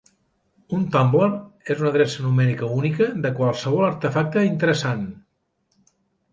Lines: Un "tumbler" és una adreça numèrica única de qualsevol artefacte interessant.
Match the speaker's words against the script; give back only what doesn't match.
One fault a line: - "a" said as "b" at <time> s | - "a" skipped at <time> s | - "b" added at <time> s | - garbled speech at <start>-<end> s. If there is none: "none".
none